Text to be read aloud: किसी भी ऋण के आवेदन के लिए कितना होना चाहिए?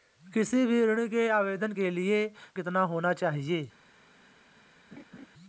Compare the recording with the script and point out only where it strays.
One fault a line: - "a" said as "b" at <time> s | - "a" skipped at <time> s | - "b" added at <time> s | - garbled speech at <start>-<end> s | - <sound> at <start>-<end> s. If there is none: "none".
- laugh at 4.9-5.3 s